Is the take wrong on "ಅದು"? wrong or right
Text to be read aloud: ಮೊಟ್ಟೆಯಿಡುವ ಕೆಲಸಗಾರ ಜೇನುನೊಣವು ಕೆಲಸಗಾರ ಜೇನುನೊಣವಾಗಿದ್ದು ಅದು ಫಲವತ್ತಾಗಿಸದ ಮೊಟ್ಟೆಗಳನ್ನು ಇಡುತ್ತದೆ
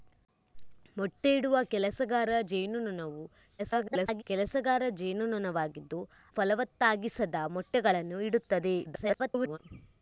wrong